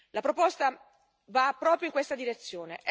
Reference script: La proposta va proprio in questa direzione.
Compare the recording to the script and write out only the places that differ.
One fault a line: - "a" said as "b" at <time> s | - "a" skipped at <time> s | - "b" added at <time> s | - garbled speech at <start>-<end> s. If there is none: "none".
none